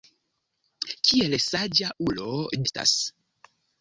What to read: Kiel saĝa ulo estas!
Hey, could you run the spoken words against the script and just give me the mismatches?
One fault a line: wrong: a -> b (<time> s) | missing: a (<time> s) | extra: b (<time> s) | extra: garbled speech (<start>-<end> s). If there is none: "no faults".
no faults